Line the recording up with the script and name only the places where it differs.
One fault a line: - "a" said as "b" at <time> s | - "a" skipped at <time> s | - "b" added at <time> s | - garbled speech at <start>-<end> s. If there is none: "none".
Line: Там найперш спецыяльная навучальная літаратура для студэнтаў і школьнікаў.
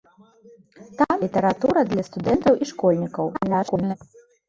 - "найперш спецыяльная навучальная" skipped at 1.2 s
- garbled speech at 3.3-4.0 s